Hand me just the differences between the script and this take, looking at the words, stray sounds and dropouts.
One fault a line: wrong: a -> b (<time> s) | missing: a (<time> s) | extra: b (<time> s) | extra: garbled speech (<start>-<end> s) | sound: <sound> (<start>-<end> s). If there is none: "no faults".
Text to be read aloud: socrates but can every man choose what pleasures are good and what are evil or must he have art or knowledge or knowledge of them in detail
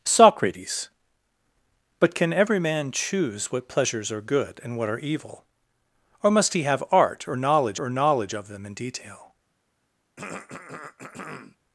sound: throat clearing (10.2-11.6 s)